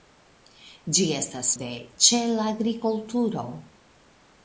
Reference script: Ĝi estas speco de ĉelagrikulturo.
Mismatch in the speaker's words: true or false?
true